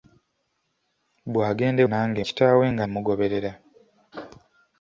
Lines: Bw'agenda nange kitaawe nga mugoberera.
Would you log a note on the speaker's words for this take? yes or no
no